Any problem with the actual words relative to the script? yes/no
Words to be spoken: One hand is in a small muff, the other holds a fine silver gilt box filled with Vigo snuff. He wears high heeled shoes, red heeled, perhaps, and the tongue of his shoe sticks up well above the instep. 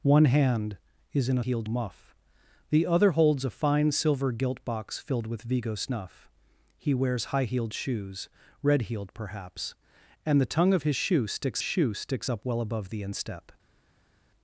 yes